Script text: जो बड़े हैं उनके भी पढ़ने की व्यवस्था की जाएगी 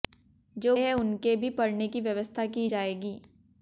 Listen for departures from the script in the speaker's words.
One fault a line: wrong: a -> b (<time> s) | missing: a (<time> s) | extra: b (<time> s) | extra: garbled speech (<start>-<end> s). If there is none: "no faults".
missing: बड़े (0.8 s)